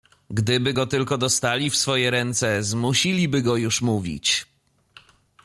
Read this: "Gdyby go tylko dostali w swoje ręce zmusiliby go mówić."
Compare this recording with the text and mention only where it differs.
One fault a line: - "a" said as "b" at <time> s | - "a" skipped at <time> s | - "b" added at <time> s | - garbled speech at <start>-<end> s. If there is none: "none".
- "już" added at 3.6 s